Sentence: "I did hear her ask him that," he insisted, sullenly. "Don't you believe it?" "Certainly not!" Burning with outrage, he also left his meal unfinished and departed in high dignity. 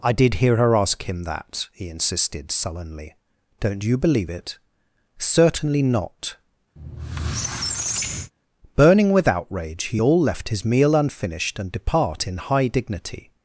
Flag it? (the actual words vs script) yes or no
yes